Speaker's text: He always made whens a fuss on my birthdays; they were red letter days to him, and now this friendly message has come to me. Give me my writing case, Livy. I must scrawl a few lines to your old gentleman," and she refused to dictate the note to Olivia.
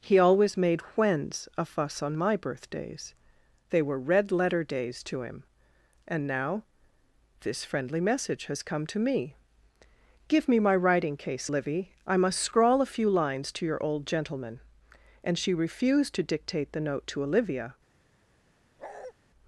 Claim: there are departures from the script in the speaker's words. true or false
false